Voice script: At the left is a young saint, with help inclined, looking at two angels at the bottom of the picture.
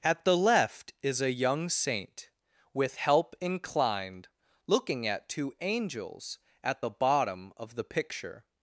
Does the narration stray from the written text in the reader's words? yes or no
no